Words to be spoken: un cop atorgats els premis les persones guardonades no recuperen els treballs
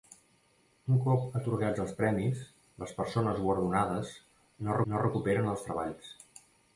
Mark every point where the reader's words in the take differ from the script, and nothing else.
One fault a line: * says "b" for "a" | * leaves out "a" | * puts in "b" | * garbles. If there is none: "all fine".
* puts in "no"